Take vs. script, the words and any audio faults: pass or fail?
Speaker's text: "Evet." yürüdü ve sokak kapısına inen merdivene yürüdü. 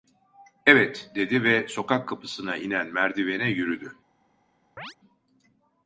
fail